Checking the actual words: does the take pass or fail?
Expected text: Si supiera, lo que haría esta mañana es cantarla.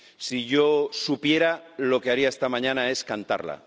fail